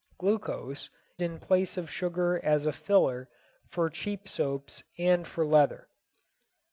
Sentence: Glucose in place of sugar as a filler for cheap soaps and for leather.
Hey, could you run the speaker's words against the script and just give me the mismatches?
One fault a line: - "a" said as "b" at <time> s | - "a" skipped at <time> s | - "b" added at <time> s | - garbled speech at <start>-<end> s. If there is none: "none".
none